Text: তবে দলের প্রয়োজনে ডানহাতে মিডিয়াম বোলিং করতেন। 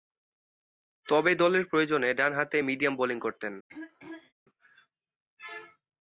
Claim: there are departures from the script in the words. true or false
false